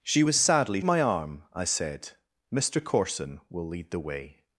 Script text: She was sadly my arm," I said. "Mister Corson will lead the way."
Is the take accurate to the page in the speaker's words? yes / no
yes